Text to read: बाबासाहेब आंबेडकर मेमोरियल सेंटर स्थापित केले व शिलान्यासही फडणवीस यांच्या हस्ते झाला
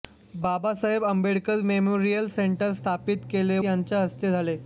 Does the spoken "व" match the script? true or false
false